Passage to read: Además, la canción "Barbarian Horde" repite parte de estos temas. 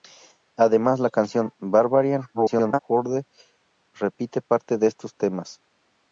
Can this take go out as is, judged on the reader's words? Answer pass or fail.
fail